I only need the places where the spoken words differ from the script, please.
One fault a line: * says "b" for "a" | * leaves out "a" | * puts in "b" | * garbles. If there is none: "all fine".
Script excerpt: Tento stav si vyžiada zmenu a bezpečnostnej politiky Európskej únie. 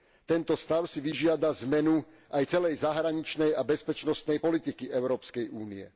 * puts in "aj celej zahraničnej"